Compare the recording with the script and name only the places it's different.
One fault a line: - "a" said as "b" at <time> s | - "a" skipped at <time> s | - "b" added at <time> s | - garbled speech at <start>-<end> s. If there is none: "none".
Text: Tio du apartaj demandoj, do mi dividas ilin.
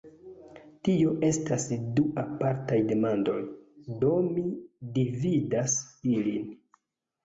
- "estas" added at 1.3 s